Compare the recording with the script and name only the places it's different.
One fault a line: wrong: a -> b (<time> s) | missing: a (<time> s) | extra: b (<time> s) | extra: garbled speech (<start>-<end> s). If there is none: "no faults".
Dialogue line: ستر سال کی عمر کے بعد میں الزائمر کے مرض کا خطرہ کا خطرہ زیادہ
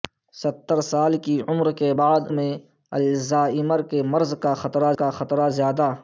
no faults